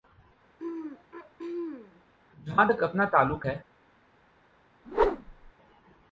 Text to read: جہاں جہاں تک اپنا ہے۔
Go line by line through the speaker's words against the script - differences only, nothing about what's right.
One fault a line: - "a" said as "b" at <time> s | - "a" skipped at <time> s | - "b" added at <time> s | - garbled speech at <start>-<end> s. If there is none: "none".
- "جہاں" skipped at 2.7 s
- "تعلق" added at 3.1 s